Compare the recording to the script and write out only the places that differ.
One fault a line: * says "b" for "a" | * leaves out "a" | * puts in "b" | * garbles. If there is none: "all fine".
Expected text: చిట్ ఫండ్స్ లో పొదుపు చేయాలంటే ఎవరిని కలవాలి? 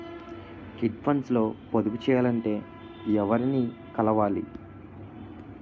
all fine